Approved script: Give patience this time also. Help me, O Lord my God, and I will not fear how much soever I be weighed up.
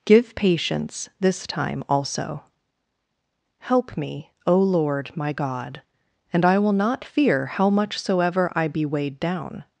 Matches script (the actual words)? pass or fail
fail